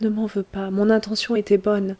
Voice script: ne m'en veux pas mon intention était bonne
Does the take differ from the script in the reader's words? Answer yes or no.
no